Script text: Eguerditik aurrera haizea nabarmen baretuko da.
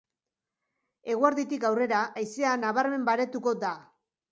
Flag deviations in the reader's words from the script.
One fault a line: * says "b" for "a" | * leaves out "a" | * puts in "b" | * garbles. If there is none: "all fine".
all fine